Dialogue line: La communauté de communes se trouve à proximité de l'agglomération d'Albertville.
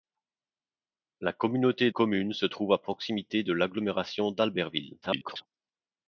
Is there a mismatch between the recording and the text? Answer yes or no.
yes